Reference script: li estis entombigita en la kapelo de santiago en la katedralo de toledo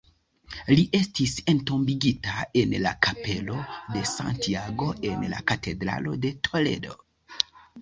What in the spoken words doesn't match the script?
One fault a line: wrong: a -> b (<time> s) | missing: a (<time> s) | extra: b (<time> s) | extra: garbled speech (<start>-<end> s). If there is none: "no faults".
no faults